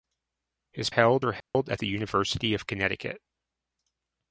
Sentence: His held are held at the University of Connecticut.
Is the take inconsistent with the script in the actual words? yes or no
no